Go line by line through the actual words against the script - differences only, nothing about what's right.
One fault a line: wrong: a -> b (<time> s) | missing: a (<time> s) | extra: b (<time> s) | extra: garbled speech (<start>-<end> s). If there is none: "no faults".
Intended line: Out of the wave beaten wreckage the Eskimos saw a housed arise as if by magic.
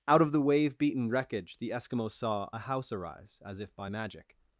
wrong: housed -> house (2.6 s)